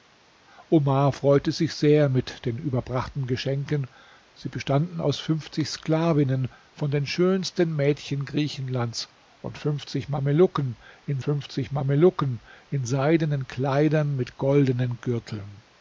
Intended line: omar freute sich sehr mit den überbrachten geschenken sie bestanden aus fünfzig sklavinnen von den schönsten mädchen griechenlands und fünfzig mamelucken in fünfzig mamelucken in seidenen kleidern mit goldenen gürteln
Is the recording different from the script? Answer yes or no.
no